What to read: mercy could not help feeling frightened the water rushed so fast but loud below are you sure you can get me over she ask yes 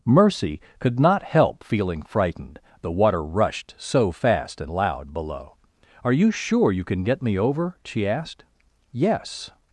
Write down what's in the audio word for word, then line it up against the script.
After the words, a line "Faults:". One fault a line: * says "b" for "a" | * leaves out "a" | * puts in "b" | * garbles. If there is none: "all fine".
mercy could not help feeling frightened the water rushed so fast and loud below are you sure you can get me over she asked yes
Faults:
* says "and" for "but"
* says "asked" for "ask"